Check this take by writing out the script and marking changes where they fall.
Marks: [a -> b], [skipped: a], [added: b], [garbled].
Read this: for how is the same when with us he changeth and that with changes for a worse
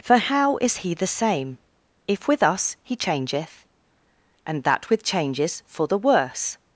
for how is [added: he] the same [when -> if] with us he changeth and that with changes for [a -> the] worse